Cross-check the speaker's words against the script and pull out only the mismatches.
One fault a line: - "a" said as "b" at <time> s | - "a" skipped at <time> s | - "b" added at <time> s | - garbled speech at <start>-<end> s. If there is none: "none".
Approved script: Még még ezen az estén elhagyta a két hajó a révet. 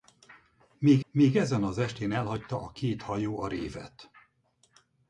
none